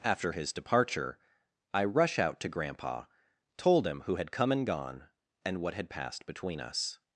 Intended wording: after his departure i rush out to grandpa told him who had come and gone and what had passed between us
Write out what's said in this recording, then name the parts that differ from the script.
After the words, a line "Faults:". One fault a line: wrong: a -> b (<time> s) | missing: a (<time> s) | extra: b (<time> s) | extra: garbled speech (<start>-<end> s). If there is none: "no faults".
after his departure i rush out to grandpa told him who had come and gone and what had passed between us
Faults:
no faults